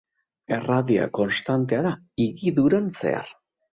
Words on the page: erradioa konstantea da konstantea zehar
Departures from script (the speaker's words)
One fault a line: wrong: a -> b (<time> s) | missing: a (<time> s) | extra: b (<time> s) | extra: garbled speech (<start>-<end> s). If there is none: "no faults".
wrong: konstantea -> higiduran (2.3 s)